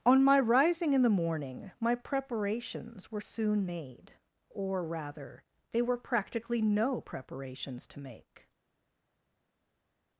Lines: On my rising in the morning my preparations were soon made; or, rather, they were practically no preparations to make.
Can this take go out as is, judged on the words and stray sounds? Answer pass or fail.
pass